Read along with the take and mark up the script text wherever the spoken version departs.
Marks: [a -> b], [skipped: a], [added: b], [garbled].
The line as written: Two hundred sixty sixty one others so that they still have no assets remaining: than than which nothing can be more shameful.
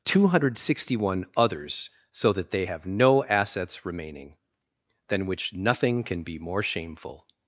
Two hundred sixty [skipped: sixty] one others so that they [skipped: still] have no assets remaining: than [skipped: than] which nothing can be more shameful.